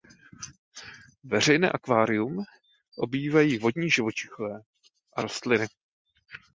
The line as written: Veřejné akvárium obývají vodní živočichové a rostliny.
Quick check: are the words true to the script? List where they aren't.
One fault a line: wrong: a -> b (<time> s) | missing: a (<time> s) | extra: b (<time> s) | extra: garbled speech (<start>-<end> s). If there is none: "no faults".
no faults